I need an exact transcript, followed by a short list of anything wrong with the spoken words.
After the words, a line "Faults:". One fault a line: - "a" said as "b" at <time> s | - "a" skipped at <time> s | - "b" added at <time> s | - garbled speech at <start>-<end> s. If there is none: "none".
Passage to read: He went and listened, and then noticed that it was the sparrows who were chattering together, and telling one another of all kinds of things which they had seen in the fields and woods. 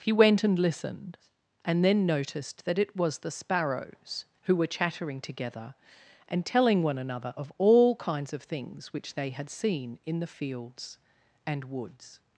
He went and listened, and then noticed that it was the sparrows who were chattering together, and telling one another of all kinds of things which they had seen in the fields and woods.
Faults:
none